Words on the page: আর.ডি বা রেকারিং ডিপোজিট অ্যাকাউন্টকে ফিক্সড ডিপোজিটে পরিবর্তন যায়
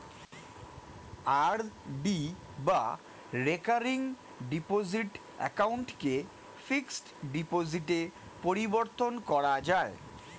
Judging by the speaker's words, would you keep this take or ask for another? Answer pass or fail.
fail